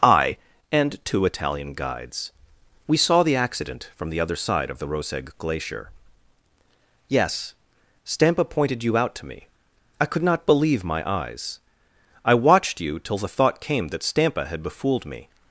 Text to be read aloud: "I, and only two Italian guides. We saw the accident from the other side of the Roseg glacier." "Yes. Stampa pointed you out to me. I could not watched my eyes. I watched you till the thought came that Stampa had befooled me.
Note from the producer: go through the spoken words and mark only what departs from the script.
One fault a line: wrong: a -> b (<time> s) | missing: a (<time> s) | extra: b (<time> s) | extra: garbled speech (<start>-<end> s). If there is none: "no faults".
missing: only (1.0 s)
wrong: watched -> believe (10.4 s)